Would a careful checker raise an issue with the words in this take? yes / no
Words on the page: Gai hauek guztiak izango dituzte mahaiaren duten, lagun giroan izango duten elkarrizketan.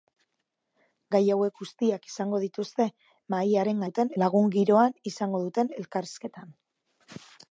no